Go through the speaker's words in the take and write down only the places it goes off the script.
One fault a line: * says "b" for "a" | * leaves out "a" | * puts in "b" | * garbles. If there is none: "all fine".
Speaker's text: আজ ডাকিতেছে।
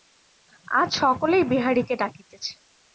* puts in "সকলেই বিহারীকে"